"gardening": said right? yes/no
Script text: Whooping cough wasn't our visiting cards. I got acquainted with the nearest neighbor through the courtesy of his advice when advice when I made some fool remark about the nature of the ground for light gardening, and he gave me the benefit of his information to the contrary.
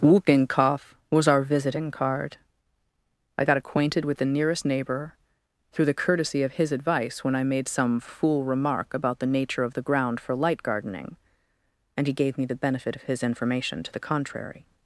yes